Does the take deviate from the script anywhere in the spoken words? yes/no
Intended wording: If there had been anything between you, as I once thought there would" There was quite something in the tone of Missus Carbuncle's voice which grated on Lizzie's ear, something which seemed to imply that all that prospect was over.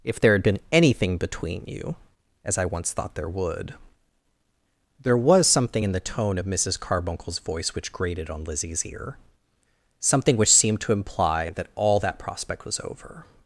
yes